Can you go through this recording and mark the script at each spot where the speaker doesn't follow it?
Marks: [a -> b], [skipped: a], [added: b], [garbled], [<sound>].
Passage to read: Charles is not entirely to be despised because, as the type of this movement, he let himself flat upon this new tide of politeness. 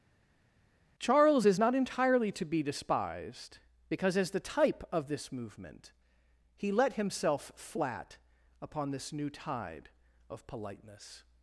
Charles is not entirely to be despised because, as the type of this movement, he let himself flat upon this new tide of politeness.